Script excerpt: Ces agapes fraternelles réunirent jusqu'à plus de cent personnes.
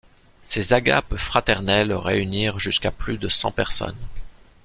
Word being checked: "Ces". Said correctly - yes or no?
yes